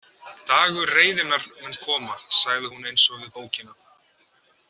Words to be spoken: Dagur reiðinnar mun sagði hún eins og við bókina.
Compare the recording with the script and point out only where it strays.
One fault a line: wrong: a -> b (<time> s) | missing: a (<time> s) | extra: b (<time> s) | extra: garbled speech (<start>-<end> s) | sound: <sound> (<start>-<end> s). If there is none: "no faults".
extra: koma (1.8 s)